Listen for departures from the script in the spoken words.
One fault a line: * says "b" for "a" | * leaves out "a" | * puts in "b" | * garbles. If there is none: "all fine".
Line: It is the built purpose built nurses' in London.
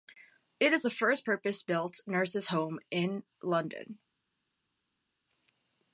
* says "first" for "built"
* puts in "home"